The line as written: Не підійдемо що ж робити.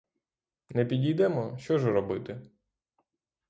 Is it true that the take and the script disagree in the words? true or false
false